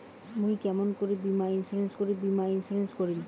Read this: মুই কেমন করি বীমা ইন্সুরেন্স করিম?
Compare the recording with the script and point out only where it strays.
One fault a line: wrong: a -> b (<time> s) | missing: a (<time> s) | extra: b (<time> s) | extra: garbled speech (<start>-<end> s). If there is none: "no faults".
extra: করি বীমা ইন্সুরেন্স (2.0 s)